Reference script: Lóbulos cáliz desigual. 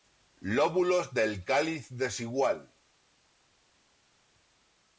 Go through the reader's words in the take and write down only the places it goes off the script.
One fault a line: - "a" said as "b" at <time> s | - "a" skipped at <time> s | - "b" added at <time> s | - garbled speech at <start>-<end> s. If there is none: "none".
- "del" added at 1.1 s